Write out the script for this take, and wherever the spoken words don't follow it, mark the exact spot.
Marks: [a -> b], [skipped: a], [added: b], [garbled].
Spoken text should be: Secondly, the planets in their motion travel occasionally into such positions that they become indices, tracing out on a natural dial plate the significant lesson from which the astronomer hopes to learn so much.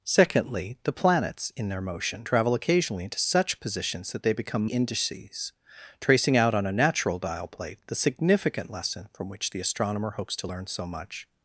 Secondly, the planets in their motion travel occasionally into such positions that they become indices, tracing out on a natural dial plate the significant lesson from which the astronomer hopes to learn so much.